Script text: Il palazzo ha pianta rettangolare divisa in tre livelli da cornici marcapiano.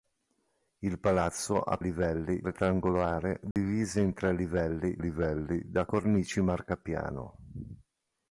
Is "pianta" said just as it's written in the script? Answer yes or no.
no